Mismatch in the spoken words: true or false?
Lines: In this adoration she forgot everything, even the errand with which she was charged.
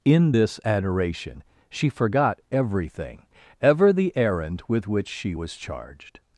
true